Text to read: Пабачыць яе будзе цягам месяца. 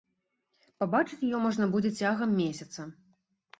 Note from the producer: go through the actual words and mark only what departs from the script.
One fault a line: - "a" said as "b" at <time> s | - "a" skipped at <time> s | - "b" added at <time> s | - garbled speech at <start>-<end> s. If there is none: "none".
- "можна" added at 1.4 s